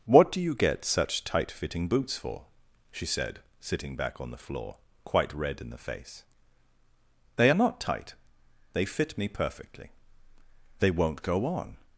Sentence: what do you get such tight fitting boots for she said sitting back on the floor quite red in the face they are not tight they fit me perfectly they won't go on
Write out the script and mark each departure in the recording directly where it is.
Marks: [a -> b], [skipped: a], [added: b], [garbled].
what do you get such tight fitting boots for she said sitting back on the floor quite red in the face they are not tight they fit me perfectly they won't go on